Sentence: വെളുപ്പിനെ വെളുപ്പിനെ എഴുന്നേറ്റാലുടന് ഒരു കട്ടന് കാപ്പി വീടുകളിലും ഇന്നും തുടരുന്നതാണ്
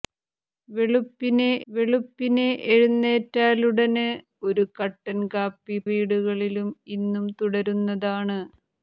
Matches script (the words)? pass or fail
pass